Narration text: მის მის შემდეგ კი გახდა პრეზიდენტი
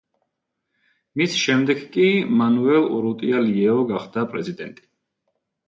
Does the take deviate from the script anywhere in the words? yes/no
yes